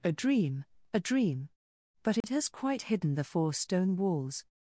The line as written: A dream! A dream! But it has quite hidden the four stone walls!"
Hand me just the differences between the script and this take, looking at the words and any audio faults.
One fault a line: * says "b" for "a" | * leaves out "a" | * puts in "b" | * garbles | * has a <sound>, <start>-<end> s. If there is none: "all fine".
* has a dropout, 2.2-2.2 s